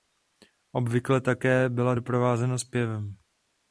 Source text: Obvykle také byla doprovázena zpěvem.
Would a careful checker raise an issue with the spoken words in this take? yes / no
no